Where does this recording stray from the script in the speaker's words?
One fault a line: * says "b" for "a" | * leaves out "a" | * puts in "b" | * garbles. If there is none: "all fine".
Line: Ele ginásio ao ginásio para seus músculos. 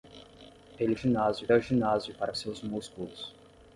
all fine